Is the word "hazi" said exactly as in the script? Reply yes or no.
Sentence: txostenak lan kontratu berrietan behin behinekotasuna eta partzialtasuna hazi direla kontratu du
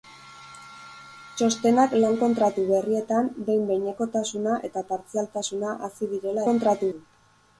yes